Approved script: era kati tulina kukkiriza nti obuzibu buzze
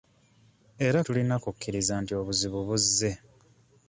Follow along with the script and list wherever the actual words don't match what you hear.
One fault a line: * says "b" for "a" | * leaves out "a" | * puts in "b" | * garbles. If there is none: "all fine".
* leaves out "kati"